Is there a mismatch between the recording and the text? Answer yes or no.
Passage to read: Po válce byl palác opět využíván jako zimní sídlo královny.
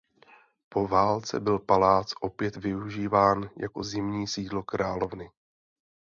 no